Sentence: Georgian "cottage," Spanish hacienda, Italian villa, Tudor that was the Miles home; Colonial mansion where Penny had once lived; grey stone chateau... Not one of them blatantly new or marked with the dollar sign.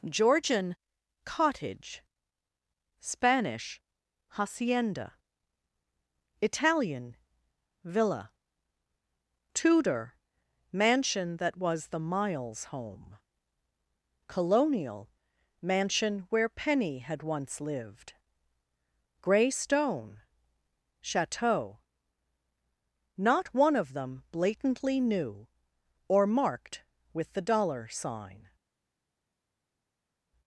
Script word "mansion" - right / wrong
right